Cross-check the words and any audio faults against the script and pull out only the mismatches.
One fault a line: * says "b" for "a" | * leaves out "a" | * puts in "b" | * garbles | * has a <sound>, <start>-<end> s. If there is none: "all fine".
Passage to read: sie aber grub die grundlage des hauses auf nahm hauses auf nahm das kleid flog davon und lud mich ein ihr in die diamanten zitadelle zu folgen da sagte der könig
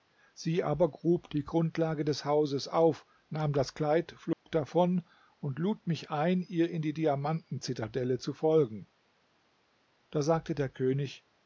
* leaves out "hauses auf nahm"
* has a dropout, 4.3-4.5 s